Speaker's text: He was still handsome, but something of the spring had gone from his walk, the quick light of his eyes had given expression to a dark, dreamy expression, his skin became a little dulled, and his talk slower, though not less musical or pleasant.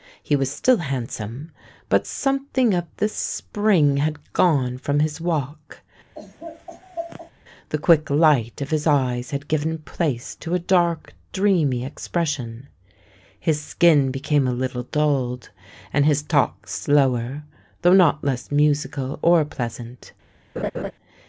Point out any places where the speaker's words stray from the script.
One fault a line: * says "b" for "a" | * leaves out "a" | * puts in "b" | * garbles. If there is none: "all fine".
* says "place" for "expression"